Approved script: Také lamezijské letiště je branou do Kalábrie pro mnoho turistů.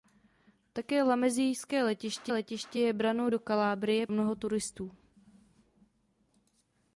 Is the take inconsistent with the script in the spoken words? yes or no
yes